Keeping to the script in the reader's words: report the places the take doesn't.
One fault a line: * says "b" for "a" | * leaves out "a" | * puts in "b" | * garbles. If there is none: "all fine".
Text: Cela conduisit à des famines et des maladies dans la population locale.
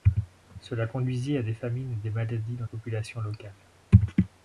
* leaves out "la"